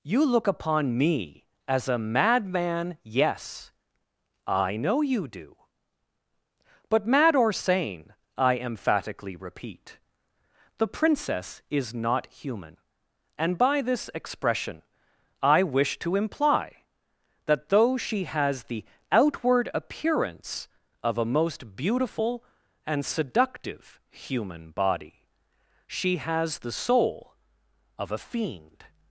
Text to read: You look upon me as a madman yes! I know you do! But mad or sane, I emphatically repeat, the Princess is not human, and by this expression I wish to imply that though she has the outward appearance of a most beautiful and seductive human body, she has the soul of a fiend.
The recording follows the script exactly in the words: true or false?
true